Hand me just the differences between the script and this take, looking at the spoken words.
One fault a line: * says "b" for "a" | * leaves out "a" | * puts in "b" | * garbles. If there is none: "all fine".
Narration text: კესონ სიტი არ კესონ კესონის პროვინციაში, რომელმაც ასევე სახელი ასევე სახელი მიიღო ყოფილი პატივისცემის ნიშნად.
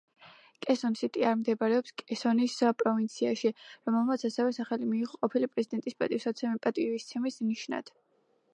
* says "მდებარეობს" for "კესონ"
* leaves out "ასევე სახელი"
* puts in "პრეზიდენტის"